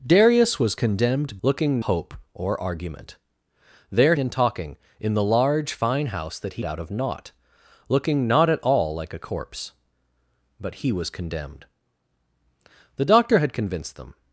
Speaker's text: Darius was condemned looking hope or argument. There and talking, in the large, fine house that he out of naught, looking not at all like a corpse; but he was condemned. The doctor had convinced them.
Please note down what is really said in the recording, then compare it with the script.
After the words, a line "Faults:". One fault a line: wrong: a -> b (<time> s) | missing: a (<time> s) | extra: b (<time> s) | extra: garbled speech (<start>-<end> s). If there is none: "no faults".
Darius was condemned looking hope or argument. There and talking, in the large, fine house that he out of naught, looking not at all like a corpse; but he was condemned. The doctor had convinced them.
Faults:
no faults